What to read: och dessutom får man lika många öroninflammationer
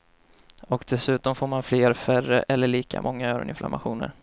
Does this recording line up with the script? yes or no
no